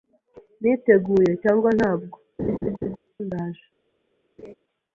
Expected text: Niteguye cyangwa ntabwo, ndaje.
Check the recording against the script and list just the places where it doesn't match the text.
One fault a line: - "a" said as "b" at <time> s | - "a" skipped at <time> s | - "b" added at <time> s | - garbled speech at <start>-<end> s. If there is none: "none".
none